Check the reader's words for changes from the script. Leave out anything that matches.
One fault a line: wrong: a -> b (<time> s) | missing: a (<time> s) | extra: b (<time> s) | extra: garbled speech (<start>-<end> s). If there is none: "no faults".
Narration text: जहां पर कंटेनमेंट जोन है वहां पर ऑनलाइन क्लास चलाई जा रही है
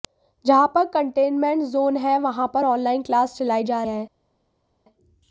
missing: रही (3.8 s)